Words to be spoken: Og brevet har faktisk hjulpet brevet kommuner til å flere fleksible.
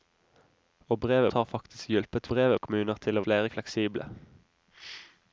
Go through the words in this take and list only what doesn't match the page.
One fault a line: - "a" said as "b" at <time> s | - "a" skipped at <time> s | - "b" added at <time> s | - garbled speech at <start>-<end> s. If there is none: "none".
none